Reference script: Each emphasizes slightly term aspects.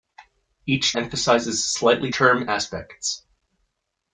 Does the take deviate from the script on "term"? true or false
false